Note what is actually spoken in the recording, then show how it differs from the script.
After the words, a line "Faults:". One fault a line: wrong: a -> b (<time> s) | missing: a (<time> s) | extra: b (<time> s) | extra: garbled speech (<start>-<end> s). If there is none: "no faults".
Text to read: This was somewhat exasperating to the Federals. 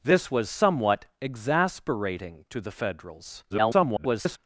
This was somewhat exasperating to the Federals. [garbled]
Faults:
extra: garbled speech (3.5-4.4 s)